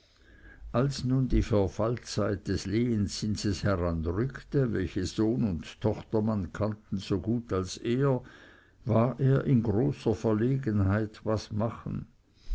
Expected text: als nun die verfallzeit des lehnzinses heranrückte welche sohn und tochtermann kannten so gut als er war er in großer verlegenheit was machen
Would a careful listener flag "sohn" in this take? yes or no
no